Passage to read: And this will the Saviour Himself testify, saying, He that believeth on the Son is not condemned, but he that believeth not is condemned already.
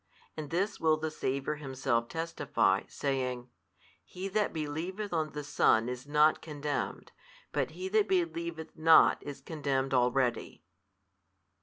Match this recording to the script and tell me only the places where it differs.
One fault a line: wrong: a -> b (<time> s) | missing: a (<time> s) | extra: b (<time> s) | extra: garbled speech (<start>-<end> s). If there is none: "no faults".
no faults